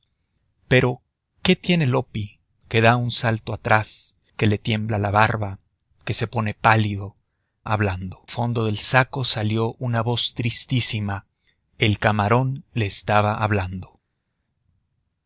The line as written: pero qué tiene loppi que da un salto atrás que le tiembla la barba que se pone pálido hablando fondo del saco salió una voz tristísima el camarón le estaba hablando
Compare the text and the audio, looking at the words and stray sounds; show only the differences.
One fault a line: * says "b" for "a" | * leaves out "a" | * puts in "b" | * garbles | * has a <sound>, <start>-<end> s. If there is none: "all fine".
all fine